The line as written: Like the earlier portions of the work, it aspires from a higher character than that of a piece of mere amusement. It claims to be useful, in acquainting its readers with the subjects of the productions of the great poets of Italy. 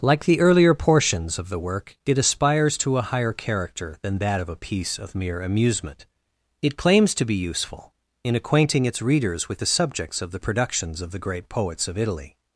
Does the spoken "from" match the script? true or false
false